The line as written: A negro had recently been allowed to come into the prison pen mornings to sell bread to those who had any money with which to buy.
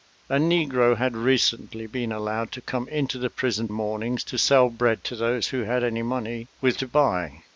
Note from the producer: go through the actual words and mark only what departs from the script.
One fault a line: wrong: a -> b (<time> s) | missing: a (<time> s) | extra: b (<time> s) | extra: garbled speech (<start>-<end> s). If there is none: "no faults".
missing: pen (3.7 s)
missing: which (6.8 s)